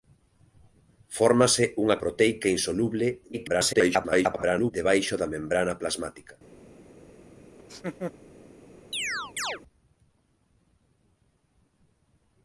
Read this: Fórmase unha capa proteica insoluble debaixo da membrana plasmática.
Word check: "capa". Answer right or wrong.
wrong